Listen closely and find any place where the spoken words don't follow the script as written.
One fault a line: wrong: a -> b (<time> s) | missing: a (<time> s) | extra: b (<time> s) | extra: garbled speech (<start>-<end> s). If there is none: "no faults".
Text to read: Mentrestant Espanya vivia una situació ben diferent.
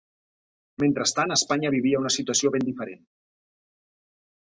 no faults